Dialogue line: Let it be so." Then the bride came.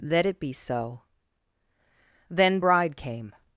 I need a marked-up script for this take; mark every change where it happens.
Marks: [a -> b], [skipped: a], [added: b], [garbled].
Let it be so." Then [skipped: the] bride came.